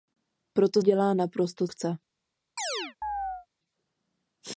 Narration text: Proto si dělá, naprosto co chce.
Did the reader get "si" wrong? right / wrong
wrong